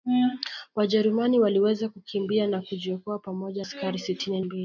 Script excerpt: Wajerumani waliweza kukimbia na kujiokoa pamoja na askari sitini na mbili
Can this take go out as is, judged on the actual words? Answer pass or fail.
fail